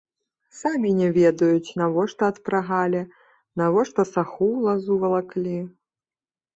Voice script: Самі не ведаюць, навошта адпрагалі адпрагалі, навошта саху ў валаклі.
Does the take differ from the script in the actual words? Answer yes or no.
yes